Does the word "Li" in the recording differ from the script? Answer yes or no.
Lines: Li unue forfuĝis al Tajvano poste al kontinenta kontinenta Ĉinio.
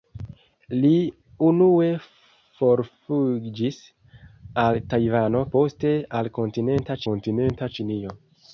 no